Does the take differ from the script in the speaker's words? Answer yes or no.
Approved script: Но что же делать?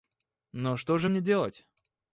yes